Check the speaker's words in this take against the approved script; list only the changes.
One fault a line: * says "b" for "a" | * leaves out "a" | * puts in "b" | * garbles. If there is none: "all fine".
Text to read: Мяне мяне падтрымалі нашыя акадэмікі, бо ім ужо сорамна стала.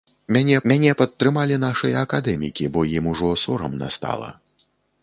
all fine